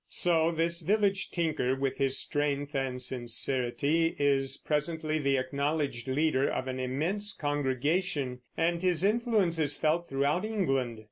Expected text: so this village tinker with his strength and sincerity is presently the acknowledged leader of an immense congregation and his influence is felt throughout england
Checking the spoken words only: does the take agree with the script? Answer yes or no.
yes